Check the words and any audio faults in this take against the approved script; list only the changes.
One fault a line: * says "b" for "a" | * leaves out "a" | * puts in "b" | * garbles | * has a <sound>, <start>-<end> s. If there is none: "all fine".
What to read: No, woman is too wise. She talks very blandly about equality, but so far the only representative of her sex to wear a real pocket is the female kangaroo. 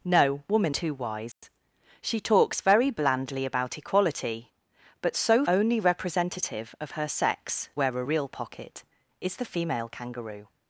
* leaves out "is"
* has a dropout, 1.3-1.4 s
* leaves out "far the"
* leaves out "to"